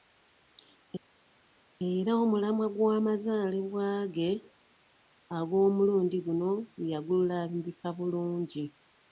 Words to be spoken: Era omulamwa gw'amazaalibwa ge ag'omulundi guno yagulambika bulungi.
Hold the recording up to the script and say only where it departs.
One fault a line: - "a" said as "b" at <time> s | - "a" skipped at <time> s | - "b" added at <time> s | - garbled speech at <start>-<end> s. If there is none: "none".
none